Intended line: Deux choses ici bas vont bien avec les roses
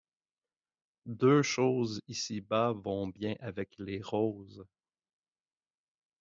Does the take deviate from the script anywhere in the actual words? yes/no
no